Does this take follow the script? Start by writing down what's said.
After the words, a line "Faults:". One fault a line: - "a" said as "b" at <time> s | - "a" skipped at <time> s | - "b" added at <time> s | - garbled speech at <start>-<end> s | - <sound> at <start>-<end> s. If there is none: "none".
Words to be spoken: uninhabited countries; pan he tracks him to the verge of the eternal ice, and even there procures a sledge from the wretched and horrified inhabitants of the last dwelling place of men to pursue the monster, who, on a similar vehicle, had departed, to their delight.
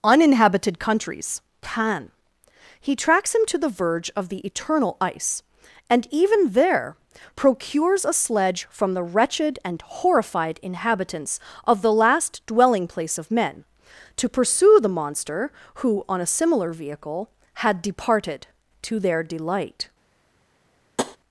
uninhabited countries; pan he tracks him to the verge of the eternal ice, and even there procures a sledge from the wretched and horrified inhabitants of the last dwelling place of men to pursue the monster, who, on a similar vehicle, had departed, to their delight.
Faults:
- tap at 21.0-21.2 s